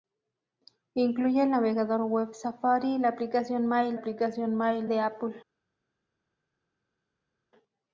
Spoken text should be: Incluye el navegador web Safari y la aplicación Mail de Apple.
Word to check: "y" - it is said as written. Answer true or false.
true